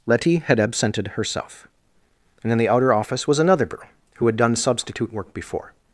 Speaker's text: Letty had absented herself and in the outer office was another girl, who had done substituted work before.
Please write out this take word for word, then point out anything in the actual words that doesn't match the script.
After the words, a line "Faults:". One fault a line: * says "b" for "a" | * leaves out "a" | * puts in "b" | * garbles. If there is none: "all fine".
Letty had absented herself and in the outer office was another girl, who had done substitute work before.
Faults:
* says "substitute" for "substituted"